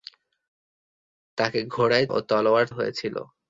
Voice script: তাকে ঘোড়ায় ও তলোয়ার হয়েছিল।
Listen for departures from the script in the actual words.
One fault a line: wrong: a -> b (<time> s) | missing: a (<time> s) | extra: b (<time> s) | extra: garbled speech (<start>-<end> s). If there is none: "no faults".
no faults